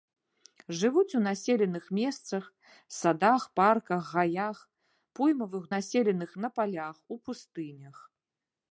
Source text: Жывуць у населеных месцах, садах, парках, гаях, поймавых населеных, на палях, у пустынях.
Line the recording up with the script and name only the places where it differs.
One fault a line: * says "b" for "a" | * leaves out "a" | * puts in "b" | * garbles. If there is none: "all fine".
all fine